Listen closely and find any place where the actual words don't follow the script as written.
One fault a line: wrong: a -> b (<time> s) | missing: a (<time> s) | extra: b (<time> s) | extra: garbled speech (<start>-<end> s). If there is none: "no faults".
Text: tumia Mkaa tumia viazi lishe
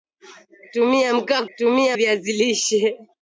no faults